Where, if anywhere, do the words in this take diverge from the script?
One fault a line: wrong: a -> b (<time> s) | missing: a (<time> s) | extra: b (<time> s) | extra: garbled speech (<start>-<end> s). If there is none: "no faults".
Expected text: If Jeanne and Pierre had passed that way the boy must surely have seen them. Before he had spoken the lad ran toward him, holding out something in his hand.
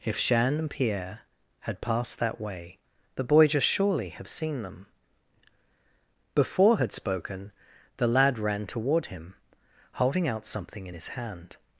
wrong: must -> just (3.5 s)
missing: he (6.8 s)